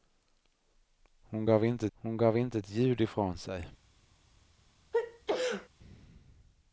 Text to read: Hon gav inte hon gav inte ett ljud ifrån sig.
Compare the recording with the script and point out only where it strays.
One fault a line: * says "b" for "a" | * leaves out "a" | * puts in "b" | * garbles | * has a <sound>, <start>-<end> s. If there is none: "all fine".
* has a sneeze, 4.9-5.7 s